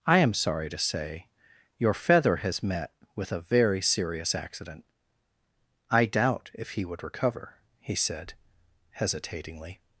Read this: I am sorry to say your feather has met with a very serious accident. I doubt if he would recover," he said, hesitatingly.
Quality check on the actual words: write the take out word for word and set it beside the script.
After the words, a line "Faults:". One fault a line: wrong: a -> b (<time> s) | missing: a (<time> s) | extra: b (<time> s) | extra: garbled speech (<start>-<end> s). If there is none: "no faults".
I am sorry to say your feather has met with a very serious accident. I doubt if he would recover," he said, hesitatingly.
Faults:
no faults